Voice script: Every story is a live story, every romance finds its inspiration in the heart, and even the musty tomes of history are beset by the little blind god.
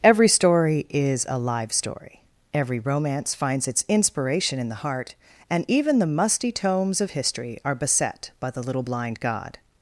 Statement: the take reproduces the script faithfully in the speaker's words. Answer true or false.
true